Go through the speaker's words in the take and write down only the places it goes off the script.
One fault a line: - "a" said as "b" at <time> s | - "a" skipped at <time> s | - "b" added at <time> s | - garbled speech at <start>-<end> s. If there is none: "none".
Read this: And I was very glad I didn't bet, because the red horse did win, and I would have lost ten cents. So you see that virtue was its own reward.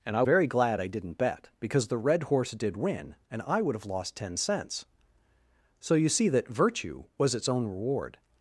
- "was" skipped at 0.2 s